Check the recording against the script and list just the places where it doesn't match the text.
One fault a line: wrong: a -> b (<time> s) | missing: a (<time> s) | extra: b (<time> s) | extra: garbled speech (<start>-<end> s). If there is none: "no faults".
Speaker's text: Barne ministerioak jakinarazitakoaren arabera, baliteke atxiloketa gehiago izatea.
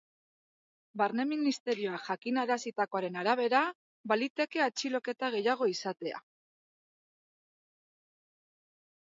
no faults